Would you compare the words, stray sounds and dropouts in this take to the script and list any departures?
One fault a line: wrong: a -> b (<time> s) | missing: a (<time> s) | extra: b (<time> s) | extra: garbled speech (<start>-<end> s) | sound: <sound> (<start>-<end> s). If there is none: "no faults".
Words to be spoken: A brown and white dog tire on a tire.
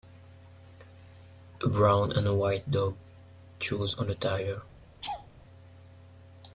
wrong: tire -> chews (3.6 s)
sound: laugh (5.0-5.3 s)